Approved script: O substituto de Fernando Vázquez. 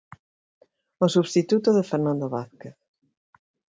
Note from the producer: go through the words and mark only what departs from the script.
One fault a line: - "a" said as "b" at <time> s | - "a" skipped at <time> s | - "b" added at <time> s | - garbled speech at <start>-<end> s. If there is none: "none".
none